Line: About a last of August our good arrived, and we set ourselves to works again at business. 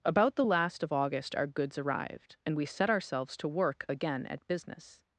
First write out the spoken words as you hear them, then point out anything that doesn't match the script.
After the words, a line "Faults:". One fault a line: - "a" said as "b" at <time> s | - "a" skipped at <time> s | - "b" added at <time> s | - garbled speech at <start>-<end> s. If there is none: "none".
About the last of August our goods arrived, and we set ourselves to work again at business.
Faults:
- "a" said as "the" at 0.3 s
- "good" said as "goods" at 1.5 s
- "works" said as "work" at 3.5 s